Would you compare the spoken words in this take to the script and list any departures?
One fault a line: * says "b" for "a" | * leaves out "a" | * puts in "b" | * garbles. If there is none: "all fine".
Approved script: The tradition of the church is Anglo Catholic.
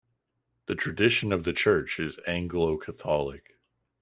all fine